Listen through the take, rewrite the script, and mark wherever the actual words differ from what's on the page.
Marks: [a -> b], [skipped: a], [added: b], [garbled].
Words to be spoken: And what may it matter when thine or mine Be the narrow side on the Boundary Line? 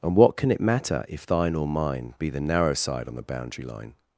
And what [may -> can] it matter [when -> if] thine or mine Be the narrow side on the Boundary Line?